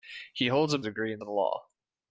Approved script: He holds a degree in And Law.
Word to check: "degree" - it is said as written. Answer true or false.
true